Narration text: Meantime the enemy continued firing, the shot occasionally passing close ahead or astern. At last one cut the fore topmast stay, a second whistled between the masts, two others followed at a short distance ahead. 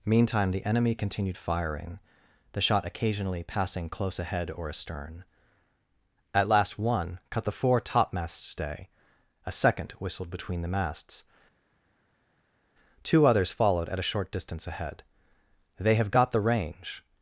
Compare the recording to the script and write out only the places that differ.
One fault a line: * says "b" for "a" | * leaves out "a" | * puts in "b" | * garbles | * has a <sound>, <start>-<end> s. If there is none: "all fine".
* puts in "They have got the range"